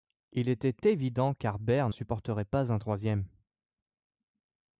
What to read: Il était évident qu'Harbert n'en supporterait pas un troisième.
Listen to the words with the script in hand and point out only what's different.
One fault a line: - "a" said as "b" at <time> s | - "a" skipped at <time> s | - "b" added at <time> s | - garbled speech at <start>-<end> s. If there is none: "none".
- "n'en" skipped at 1.9 s